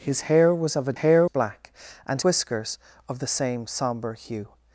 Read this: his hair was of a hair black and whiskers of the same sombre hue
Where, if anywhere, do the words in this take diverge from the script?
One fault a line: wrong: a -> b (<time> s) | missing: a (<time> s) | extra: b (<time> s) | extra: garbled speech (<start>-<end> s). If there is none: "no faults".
no faults